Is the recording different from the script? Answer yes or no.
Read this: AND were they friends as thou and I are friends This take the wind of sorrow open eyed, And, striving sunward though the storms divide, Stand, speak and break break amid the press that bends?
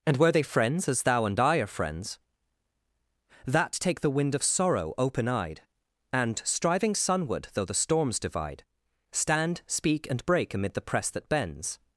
yes